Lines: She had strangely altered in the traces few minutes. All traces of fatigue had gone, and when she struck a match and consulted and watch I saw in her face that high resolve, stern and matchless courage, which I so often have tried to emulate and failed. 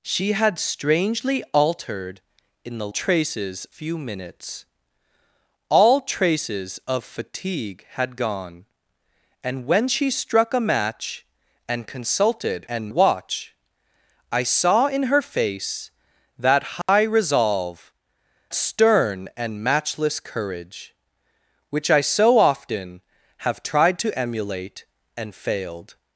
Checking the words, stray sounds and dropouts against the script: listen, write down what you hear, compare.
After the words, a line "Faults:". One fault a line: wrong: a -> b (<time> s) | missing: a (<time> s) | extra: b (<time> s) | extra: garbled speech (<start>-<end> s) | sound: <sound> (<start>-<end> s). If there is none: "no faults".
She had strangely altered in the traces few minutes. All traces of fatigue had gone, and when she struck a match and consulted and watch I saw in her face that high resolve, stern and matchless courage, which I so often have tried to emulate and failed.
Faults:
sound: dropout (16.8-16.9 s)